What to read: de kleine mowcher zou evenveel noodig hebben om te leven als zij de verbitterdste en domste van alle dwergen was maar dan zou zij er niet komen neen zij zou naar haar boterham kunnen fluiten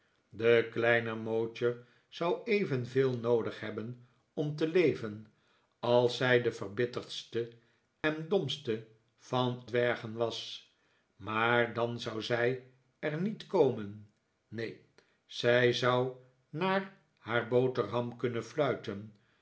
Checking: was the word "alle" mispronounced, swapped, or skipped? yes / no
yes